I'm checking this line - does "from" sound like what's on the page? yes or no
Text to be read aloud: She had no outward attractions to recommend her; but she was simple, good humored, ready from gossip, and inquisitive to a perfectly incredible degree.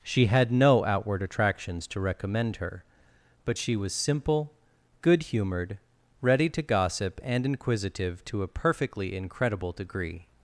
no